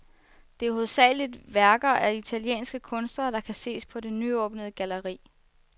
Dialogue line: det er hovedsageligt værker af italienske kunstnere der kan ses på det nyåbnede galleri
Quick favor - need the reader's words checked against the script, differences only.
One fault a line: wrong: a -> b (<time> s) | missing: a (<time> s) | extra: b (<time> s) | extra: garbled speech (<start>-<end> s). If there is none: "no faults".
no faults